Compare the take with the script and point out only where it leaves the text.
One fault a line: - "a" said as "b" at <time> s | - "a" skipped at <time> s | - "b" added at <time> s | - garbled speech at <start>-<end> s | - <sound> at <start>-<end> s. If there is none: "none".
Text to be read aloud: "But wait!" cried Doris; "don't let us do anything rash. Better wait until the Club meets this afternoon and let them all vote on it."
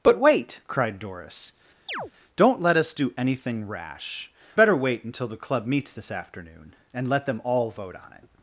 - chirp at 1.9-2.1 s